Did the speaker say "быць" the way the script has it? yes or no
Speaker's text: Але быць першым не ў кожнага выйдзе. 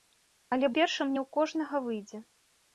no